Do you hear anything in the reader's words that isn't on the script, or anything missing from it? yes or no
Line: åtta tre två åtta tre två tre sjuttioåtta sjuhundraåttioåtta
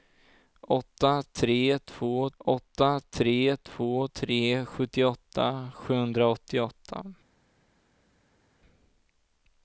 no